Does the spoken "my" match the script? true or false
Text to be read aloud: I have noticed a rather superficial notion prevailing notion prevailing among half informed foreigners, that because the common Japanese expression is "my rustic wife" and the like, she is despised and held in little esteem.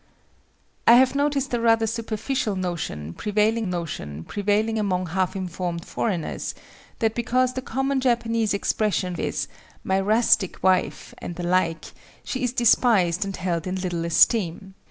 true